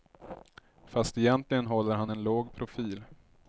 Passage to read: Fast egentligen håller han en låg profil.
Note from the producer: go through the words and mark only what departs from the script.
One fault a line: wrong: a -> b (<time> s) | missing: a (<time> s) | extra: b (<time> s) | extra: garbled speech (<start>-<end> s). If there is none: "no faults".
no faults